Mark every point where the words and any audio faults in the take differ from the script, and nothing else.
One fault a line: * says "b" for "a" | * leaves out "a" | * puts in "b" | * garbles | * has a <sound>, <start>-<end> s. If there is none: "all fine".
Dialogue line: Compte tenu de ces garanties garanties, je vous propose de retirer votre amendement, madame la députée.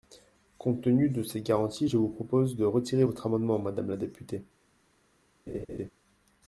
* leaves out "garanties"
* has a laugh, 5.5-5.9 s